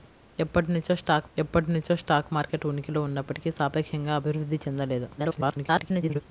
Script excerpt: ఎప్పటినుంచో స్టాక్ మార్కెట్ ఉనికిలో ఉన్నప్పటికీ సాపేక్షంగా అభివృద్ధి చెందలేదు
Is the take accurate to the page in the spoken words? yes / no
no